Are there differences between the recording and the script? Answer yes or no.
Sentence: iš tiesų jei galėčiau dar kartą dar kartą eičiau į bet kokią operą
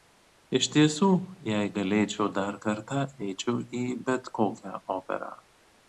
yes